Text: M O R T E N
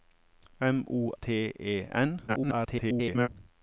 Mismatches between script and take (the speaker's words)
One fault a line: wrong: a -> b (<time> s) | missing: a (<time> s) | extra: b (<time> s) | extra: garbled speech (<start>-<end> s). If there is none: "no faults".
missing: R (1.1 s)
extra: garbled speech (2.3-3.3 s)